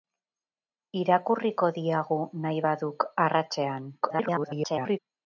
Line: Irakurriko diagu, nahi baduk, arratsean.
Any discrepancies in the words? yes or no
yes